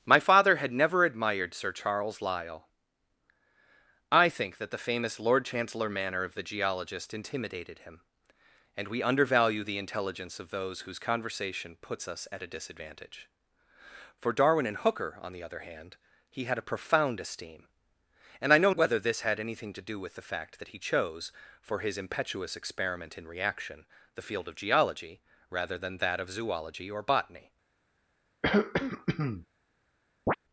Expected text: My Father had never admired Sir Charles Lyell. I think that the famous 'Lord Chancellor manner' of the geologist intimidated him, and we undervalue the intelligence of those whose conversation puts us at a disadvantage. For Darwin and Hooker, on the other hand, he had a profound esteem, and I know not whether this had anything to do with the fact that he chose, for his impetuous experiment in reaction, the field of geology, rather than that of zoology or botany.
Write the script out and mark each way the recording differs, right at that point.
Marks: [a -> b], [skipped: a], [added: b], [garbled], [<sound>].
My Father had never admired Sir Charles Lyell. I think that the famous 'Lord Chancellor manner' of the geologist intimidated him, and we undervalue the intelligence of those whose conversation puts us at a disadvantage. For Darwin and Hooker, on the other hand, he had a profound esteem, and I know [skipped: not] whether this had anything to do with the fact that he chose, for his impetuous experiment in reaction, the field of geology, rather than that of zoology or botany. [throat clearing] [chirp]